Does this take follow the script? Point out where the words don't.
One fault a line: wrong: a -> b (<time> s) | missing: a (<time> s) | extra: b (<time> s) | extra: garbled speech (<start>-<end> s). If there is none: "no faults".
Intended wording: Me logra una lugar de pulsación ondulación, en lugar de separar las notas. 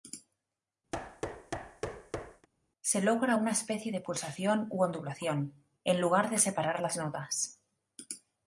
wrong: Me -> Se (2.8 s)
wrong: lugar -> especie (3.5 s)
extra: u (4.7 s)